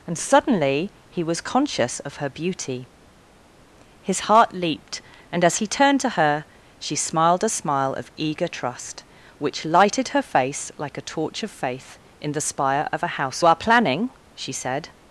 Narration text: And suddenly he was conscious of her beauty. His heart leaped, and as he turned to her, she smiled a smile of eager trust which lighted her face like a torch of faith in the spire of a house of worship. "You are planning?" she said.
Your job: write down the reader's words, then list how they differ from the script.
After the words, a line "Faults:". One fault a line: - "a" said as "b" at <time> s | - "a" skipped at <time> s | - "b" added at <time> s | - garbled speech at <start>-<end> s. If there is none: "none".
And suddenly he was conscious of her beauty. His heart leaped, and as he turned to her, she smiled a smile of eager trust which lighted her face like a torch of faith in the spire of a house are planning?" she said.
Faults:
- "of worship You" skipped at 13.4 s